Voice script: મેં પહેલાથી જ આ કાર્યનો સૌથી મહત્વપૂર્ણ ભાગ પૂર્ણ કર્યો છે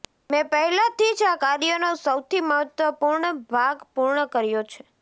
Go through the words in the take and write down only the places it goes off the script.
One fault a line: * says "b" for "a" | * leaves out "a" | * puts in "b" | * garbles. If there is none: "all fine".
all fine